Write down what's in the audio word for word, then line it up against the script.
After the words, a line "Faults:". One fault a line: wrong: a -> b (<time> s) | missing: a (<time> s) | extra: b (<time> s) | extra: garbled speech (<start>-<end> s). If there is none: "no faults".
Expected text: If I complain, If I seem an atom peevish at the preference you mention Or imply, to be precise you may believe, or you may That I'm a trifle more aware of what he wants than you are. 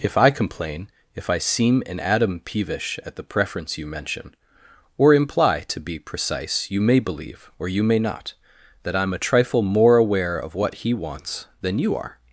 If I complain, If I seem an atom peevish at the preference you mention Or imply, to be precise you may believe, or you may not, That I'm a trifle more aware of what he wants than you are.
Faults:
extra: not (8.0 s)